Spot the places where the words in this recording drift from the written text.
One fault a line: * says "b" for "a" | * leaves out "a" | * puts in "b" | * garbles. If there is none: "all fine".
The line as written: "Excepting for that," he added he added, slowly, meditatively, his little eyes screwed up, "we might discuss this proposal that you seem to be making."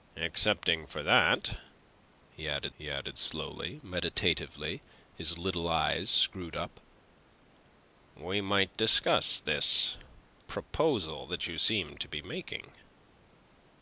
all fine